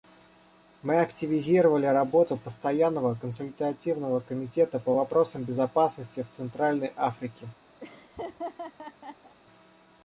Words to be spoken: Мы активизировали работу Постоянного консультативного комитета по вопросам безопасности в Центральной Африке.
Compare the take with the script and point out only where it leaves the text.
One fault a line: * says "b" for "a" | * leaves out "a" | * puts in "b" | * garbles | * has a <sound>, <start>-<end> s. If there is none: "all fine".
* has a laugh, 7.8-9.4 s